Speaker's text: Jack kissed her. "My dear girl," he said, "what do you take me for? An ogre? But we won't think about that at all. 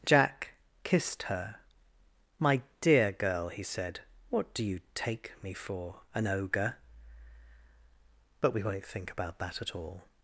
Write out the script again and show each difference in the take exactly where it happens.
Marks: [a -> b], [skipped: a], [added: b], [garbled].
Jack kissed her. "My dear girl," he said, "what do you take me for? An ogre? But we won't think about that at all.